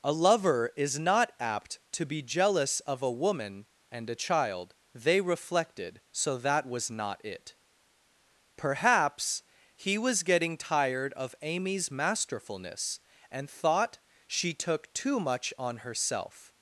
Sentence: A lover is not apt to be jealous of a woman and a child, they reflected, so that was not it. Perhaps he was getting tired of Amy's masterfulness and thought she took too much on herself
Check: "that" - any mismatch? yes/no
no